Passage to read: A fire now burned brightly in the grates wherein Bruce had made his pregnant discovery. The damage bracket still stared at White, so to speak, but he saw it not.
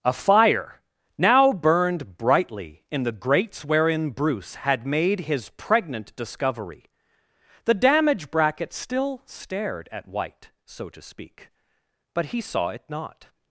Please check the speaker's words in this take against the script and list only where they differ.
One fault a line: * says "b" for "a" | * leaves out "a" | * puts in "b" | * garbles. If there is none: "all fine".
all fine